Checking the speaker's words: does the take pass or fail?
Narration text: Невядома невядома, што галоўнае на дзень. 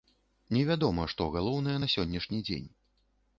fail